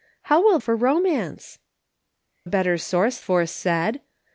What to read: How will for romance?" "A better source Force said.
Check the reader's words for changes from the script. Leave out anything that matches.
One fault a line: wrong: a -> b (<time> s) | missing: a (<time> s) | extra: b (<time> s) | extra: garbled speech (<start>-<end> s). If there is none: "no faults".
no faults